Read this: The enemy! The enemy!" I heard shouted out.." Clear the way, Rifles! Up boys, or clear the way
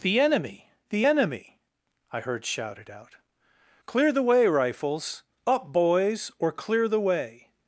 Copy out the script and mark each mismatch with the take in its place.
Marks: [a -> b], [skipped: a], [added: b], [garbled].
The enemy! The enemy!" I heard shouted out.." Clear the way, Rifles! Up boys, or clear the way